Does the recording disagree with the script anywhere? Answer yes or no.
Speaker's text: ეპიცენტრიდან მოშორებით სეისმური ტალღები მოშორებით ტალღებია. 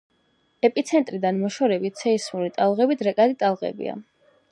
yes